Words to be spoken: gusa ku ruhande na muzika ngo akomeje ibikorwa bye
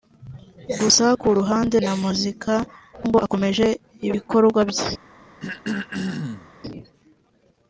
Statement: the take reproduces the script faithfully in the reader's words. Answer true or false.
true